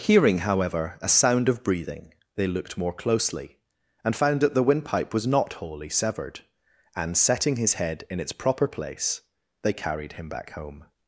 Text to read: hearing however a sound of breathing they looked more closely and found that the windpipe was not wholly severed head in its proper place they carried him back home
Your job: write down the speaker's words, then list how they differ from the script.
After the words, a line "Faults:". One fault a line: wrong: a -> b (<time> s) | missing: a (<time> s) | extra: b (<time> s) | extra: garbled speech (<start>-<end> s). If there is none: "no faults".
hearing however a sound of breathing they looked more closely and found that the windpipe was not wholly severed and setting his head in its proper place they carried him back home
Faults:
extra: and setting his (6.9 s)